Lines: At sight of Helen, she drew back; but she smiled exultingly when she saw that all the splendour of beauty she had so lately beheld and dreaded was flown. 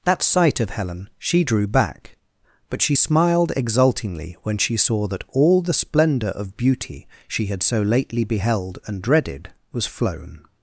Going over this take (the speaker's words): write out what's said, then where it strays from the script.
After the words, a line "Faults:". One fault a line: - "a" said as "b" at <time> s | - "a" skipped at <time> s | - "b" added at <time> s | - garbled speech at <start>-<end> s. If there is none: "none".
That sight of Helen, she drew back; but she smiled exultingly when she saw that all the splendour of beauty she had so lately beheld and dreaded was flown.
Faults:
- "At" said as "That" at 0.0 s